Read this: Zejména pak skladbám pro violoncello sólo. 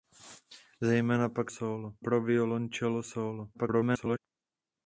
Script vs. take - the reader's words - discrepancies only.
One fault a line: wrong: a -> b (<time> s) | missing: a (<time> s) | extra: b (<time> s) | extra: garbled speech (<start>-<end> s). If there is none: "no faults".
wrong: skladbám -> sólo (1.5 s)
extra: garbled speech (3.5-4.2 s)